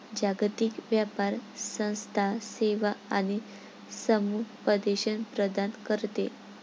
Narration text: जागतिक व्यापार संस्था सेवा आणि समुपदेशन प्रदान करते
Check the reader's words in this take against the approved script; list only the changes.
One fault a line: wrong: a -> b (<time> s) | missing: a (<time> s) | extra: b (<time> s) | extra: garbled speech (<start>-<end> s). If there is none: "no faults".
no faults